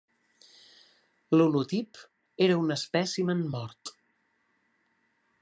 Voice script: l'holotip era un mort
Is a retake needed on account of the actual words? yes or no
yes